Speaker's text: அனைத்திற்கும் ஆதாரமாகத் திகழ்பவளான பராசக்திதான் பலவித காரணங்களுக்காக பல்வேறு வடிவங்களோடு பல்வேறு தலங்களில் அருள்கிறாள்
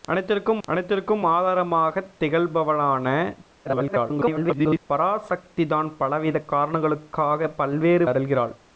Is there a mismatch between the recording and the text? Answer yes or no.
yes